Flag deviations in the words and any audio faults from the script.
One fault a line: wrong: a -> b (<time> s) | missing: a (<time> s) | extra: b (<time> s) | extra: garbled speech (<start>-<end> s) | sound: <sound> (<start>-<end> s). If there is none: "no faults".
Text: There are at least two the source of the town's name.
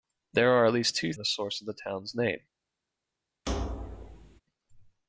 sound: thud (3.5-4.4 s)